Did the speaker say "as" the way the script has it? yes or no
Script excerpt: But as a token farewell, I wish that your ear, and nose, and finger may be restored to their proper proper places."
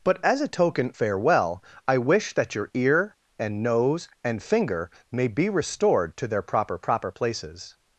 yes